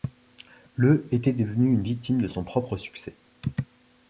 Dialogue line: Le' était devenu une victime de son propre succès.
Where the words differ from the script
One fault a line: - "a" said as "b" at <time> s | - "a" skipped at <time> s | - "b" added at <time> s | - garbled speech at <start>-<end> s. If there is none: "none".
none